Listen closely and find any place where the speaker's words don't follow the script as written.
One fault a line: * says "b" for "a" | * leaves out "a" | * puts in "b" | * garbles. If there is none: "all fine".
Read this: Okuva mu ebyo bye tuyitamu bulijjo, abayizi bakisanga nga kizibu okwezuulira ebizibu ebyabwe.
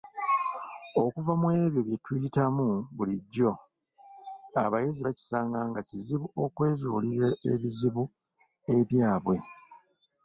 all fine